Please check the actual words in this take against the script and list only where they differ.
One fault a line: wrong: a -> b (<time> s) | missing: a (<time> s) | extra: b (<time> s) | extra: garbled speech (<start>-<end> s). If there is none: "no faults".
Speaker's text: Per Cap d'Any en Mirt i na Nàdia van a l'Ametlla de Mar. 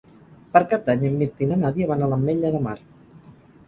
no faults